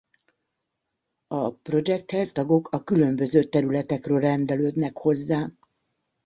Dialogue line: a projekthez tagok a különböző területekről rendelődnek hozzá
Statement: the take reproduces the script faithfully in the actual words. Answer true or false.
true